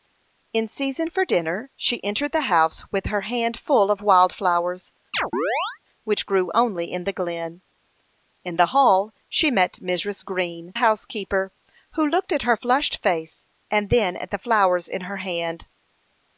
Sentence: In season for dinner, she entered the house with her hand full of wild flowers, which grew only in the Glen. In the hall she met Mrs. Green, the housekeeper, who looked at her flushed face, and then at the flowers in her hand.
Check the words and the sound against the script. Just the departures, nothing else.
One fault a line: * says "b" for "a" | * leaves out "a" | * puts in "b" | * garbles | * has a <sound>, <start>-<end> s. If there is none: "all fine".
* has a chirp, 5.1-5.8 s
* leaves out "the"